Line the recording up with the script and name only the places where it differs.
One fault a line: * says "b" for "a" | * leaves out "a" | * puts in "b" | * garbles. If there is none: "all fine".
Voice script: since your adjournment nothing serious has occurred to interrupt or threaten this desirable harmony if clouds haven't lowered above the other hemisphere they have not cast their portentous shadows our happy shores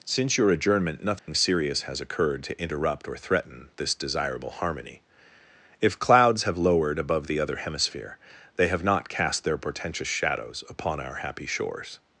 * says "have" for "haven't"
* puts in "upon"